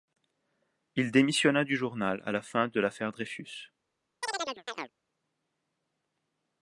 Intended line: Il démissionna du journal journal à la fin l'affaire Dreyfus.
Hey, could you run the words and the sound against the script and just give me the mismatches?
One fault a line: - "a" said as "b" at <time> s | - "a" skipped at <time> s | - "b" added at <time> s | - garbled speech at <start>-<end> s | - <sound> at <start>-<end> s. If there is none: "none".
- "journal" skipped at 2.2 s
- "de" added at 2.7 s
- chirp at 4.2-4.9 s